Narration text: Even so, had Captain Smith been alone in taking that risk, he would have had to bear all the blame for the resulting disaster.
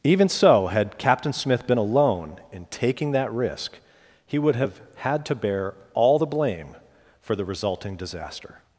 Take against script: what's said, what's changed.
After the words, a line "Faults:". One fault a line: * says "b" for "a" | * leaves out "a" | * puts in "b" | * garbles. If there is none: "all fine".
Even so, had Captain Smith been alone in taking that risk, he would have had to bear all the blame for the resulting disaster.
Faults:
all fine